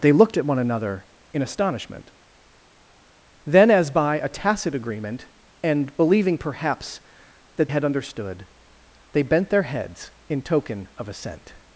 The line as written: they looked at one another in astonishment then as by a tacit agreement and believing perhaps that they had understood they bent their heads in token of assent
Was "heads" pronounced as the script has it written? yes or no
yes